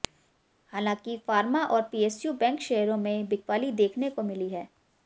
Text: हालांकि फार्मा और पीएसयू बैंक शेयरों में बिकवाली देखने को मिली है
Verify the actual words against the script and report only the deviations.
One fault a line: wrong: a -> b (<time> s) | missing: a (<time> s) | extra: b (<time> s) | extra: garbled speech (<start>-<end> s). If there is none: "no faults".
no faults